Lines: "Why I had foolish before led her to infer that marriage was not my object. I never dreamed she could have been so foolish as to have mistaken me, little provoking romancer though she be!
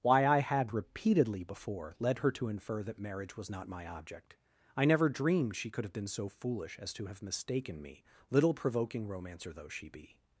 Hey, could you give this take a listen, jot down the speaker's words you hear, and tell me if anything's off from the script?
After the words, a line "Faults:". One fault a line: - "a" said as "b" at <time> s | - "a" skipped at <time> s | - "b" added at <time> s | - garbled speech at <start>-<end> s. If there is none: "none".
"Why I had repeatedly before led her to infer that marriage was not my object. I never dreamed she could have been so foolish as to have mistaken me, little provoking romancer though she be!
Faults:
- "foolish" said as "repeatedly" at 0.7 s